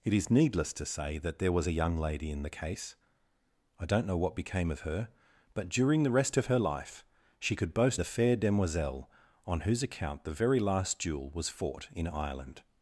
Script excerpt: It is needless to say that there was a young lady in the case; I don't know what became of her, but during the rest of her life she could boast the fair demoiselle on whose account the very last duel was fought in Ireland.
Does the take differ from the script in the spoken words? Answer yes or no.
no